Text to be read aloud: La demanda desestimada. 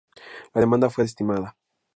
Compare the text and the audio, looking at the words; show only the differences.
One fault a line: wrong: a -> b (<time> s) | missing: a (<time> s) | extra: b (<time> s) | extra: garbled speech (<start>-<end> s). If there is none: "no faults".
extra: fue (0.9 s)